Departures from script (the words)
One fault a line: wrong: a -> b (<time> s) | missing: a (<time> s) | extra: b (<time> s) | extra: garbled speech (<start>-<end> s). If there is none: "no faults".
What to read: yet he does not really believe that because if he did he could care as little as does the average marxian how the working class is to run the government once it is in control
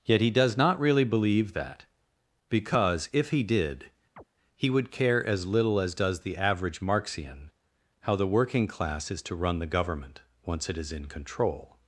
wrong: could -> would (4.7 s)